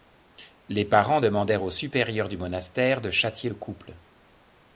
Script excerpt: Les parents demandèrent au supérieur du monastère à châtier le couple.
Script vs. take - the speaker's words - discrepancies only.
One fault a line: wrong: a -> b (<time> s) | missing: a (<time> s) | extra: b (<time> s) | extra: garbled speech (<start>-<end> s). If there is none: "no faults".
wrong: à -> de (3.0 s)